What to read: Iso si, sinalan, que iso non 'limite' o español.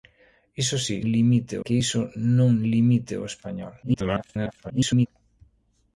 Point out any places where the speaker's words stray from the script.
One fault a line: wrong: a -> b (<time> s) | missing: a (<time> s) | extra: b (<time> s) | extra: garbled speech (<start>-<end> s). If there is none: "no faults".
wrong: sinalan -> limite (1.1 s)
extra: garbled speech (3.8-5.1 s)